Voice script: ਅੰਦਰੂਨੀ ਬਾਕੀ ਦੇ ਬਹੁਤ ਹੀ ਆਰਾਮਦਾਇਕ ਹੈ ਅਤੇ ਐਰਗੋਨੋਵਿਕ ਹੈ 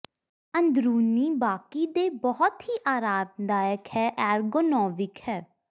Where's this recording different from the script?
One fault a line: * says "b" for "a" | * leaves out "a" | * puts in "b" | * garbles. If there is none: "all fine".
* leaves out "ਅਤੇ"